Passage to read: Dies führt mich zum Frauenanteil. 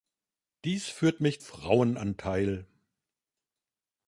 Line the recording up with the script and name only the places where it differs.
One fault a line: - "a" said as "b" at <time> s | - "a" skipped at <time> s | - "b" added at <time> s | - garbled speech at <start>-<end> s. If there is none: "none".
- "zum" skipped at 1.4 s